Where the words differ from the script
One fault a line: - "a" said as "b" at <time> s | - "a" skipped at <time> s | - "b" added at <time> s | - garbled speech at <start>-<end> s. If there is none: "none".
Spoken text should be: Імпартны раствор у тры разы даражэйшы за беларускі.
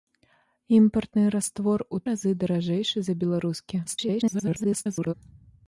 - "тры" skipped at 2.0 s
- garbled speech at 3.9-5.1 s